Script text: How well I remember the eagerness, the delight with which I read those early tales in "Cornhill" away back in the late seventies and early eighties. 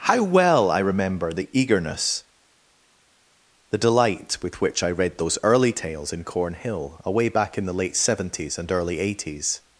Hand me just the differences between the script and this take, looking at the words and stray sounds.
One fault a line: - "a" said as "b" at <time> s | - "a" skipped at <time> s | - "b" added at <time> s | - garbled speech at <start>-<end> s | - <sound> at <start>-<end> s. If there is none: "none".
none